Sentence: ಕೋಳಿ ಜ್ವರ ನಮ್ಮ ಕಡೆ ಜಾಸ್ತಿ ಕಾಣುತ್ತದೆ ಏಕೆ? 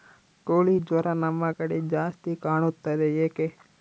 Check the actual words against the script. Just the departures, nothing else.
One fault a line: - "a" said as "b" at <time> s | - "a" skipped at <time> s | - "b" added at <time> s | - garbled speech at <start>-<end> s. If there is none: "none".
none